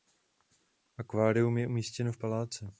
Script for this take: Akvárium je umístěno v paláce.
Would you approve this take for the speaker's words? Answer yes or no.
yes